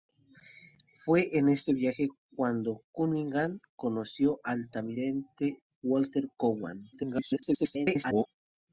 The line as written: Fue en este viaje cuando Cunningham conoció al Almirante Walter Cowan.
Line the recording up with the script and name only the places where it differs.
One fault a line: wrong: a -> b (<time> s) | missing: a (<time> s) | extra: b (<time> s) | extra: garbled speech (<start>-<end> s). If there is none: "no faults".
extra: garbled speech (6.9-8.3 s)